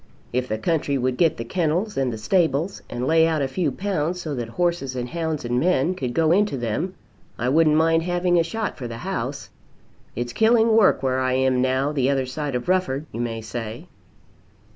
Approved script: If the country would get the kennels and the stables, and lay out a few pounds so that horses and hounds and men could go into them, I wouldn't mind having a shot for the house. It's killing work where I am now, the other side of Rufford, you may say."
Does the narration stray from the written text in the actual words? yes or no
no